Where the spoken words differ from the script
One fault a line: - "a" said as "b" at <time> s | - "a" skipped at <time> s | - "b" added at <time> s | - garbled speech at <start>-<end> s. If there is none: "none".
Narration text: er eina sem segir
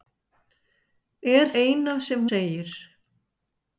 none